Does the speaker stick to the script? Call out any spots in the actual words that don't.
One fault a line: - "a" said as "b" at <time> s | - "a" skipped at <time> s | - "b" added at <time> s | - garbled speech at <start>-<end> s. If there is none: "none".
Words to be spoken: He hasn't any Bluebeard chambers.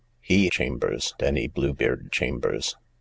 - "hasn't" said as "chambers" at 0.5 s